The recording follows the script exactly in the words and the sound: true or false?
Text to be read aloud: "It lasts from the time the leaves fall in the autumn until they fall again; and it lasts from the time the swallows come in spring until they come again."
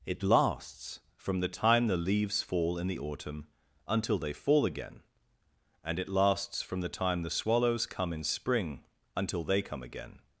true